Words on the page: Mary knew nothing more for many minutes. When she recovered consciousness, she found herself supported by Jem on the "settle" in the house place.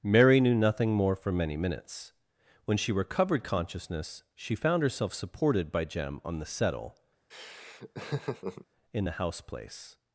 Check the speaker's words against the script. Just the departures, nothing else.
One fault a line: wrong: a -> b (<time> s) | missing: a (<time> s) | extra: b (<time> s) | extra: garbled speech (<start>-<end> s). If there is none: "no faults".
no faults